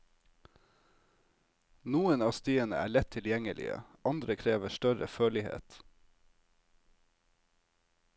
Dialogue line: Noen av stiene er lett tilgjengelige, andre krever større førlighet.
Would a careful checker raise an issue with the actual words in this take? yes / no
no